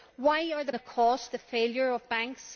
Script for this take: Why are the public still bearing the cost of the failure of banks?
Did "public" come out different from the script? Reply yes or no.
yes